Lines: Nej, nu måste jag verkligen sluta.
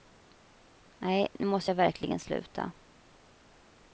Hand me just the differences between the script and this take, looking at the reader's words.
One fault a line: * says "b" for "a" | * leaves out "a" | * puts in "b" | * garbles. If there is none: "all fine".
all fine